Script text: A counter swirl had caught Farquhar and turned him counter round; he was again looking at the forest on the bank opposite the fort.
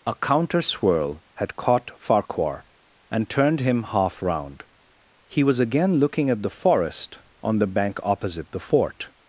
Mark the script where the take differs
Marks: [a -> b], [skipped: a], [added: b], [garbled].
A counter swirl had caught Farquhar and turned him [counter -> half] round; he was again looking at the forest on the bank opposite the fort.